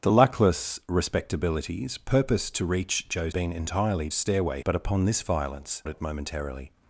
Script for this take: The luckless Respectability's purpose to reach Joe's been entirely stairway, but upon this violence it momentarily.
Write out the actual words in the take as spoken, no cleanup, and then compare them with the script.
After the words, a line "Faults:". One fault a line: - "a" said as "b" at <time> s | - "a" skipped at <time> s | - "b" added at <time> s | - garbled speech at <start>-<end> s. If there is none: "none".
The luckless Respectability's purpose to reach Joe's been entirely stairway, but upon this violence it momentarily.
Faults:
none